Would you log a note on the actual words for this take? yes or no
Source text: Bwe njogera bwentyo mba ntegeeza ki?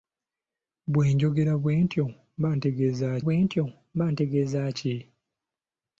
yes